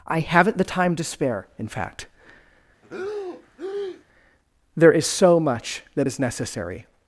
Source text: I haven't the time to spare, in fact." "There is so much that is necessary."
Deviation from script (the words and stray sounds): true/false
true